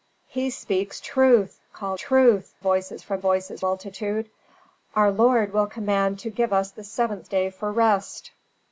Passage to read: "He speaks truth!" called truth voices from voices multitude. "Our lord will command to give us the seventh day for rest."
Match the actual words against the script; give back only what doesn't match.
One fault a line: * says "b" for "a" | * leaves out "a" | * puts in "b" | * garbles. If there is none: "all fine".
all fine